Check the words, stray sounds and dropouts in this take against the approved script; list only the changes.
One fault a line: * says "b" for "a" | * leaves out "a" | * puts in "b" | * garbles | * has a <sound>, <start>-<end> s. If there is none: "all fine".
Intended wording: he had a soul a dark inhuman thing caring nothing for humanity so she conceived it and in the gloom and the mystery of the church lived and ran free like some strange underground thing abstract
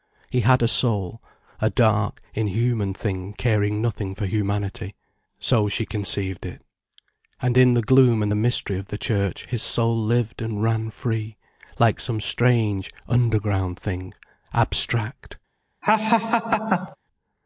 * puts in "his soul"
* has a laugh, 15.8-17.0 s